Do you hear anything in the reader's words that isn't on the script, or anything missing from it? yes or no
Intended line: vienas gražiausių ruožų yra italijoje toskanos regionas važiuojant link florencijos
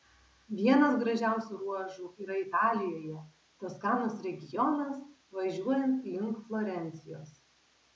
no